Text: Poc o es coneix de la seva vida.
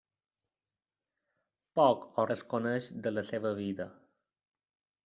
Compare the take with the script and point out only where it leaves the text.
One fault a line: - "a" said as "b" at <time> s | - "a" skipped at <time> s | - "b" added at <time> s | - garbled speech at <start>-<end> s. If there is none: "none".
none